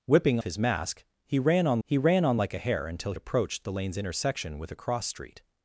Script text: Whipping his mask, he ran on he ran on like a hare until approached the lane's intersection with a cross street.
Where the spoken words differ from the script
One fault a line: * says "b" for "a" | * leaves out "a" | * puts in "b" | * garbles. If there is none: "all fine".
all fine